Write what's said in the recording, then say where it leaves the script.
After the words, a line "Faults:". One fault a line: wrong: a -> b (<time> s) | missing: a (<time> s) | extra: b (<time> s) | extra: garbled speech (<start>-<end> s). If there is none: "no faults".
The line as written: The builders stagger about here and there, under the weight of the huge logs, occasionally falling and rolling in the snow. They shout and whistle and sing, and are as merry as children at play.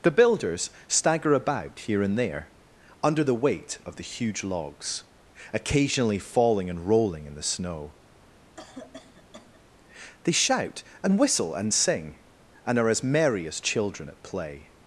The builders stagger about here and there, under the weight of the huge logs, occasionally falling and rolling in the snow. They shout and whistle and sing, and are as merry as children at play.
Faults:
no faults